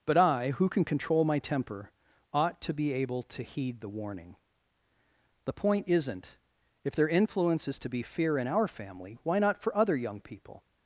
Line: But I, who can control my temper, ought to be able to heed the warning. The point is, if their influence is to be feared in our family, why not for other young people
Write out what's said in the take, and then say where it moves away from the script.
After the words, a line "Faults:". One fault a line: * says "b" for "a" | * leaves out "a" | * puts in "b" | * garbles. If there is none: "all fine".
But I, who can control my temper, ought to be able to heed the warning. The point isn't, if their influence is to be fear in our family, why not for other young people
Faults:
* says "isn't" for "is"
* says "fear" for "feared"